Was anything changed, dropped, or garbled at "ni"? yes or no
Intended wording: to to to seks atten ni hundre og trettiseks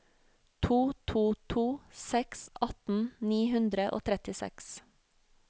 no